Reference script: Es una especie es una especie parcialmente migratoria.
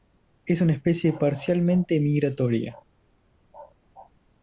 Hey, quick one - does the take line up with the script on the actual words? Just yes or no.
no